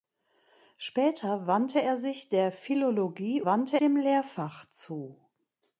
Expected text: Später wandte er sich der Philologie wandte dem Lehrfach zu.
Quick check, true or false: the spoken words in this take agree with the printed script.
true